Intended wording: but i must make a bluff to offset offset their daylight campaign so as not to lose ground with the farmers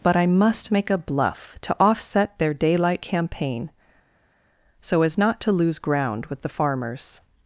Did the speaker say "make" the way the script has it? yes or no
yes